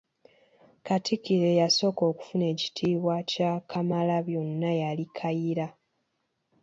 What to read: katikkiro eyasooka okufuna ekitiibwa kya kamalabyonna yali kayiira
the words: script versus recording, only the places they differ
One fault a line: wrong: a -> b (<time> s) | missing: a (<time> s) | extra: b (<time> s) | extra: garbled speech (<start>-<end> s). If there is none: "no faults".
no faults